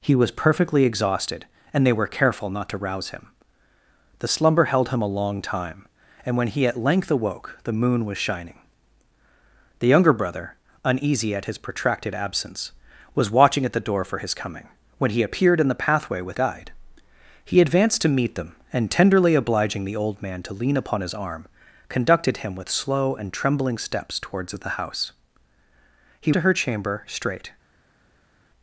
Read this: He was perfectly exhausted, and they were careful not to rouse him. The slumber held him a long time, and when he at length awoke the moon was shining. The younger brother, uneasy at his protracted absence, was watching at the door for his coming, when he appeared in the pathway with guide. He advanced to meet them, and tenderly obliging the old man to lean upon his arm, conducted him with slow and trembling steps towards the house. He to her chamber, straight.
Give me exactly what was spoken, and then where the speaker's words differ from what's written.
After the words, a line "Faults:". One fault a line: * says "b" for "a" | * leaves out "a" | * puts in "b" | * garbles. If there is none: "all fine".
He was perfectly exhausted, and they were careful not to rouse him. The slumber held him a long time, and when he at length awoke the moon was shining. The younger brother, uneasy at his protracted absence, was watching at the door for his coming, when he appeared in the pathway with guide. He advanced to meet them, and tenderly obliging the old man to lean upon his arm, conducted him with slow and trembling steps towards the house. He to her chamber, straight.
Faults:
all fine